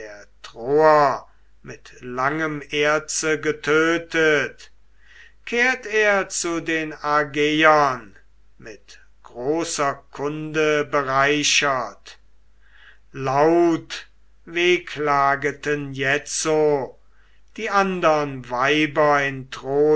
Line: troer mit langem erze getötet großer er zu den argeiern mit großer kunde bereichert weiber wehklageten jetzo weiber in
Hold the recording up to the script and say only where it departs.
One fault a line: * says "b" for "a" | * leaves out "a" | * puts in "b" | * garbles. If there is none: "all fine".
* says "kehrt" for "großer"
* says "laut" for "weiber"
* puts in "die andern"